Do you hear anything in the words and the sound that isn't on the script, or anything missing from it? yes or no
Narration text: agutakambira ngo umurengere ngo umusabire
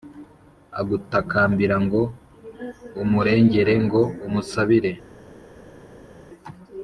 no